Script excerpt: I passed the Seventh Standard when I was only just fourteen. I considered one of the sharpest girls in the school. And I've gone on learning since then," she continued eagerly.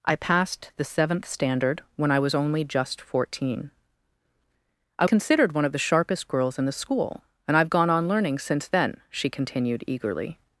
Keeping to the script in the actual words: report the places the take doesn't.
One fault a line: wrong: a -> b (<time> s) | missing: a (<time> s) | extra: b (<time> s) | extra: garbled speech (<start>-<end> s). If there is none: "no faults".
no faults